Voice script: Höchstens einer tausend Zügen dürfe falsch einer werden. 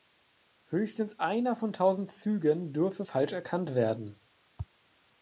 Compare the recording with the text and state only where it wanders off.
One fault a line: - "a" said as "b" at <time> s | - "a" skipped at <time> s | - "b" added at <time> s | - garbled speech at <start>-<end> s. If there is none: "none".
- "von" added at 1.6 s
- "einer" said as "erkannt" at 3.3 s